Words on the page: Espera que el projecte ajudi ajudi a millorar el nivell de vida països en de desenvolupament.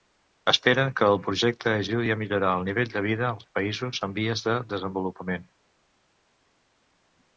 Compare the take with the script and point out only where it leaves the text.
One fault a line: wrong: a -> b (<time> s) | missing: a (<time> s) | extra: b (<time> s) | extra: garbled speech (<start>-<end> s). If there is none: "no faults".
missing: ajudi (2.1 s)
extra: als (3.3 s)
extra: vies (4.2 s)